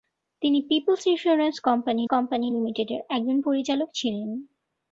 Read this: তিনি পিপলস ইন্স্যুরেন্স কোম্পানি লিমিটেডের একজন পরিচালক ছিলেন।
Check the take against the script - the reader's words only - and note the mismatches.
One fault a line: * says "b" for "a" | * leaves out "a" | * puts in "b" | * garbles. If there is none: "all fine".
* puts in "কোম্পানি"